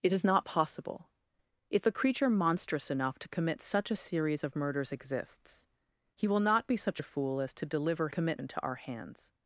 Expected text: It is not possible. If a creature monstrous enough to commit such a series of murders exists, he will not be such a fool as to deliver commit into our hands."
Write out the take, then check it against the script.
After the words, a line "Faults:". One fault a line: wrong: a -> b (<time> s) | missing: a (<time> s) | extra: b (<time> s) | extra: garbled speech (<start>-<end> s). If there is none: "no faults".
It is not possible. If a creature monstrous enough to commit such a series of murders exists, he will not be such a fool as to deliver commit into our hands."
Faults:
no faults